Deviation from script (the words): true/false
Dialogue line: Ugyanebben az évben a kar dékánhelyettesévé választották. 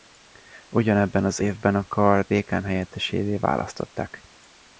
false